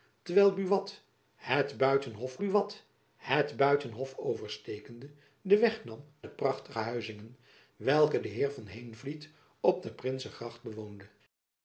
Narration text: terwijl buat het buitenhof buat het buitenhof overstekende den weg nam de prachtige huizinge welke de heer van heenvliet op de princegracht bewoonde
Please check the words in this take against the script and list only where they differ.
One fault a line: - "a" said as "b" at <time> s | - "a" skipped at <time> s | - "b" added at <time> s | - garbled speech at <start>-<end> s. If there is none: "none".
none